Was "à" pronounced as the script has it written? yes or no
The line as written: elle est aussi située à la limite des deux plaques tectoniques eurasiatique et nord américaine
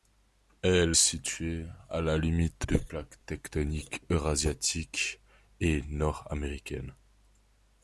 yes